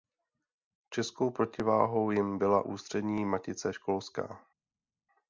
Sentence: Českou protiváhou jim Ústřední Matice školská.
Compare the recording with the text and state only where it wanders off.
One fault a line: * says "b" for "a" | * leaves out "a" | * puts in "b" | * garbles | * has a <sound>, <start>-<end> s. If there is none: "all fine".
* puts in "byla"